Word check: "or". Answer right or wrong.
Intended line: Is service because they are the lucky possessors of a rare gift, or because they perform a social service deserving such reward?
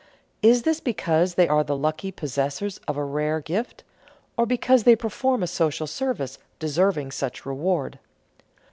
right